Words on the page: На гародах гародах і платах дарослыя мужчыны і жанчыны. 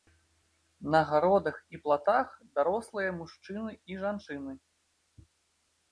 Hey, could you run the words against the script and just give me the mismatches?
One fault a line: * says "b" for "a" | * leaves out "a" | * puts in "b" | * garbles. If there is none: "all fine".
* leaves out "гародах"